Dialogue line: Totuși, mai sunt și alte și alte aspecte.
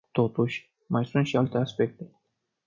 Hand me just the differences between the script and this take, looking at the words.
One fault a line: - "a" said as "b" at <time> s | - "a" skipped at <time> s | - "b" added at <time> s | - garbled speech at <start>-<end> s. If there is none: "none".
- "și alte" skipped at 1.6 s